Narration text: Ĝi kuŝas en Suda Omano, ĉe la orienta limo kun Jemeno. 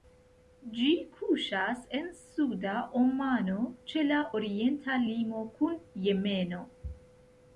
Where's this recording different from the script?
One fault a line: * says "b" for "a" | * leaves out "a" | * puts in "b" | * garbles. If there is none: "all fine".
all fine